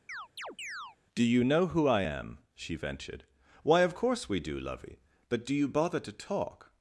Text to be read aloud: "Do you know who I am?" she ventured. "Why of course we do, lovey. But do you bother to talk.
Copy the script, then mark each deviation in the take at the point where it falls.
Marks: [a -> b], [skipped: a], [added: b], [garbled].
"Do you know who I am?" she ventured. "Why of course we do, lovey. But do you bother to talk.